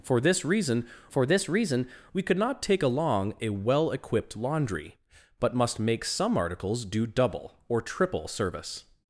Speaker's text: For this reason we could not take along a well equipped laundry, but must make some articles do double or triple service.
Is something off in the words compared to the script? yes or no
yes